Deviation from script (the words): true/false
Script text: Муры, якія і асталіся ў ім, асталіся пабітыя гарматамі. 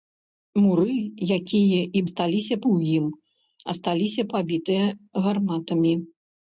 false